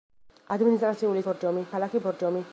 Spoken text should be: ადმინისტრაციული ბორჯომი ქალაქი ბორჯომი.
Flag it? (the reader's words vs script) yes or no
no